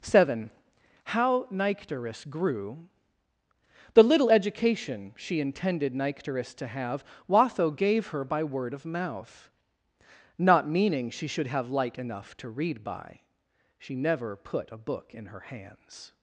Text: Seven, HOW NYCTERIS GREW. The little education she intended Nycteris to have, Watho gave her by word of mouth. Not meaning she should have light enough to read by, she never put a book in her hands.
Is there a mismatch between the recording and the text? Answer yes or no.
no